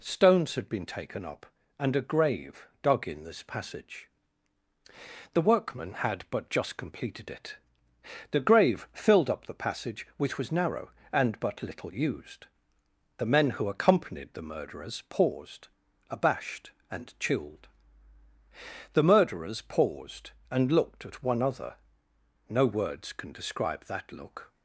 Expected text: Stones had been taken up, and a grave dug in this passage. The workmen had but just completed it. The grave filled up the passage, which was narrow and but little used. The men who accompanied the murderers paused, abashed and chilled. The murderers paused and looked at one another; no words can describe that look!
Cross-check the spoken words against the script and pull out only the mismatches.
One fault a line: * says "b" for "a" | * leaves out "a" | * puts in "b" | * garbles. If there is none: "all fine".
* says "other" for "another"